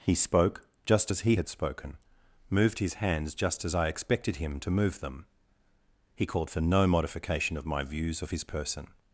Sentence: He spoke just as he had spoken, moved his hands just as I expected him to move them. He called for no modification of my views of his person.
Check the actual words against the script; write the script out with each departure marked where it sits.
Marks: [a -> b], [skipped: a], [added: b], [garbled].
He spoke just as he had spoken, moved his hands just as I expected him to move them. He called for no modification of my views of his person.